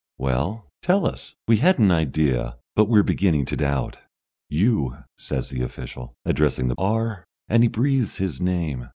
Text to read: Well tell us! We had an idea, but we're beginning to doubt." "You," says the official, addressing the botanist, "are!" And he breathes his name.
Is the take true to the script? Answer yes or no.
no